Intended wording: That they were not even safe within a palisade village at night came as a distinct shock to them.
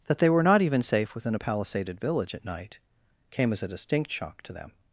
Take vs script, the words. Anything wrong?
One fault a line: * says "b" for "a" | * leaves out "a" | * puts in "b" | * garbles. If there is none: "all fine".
* says "palisaded" for "palisade"